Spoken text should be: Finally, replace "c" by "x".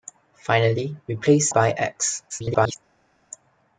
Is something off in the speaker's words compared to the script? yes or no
yes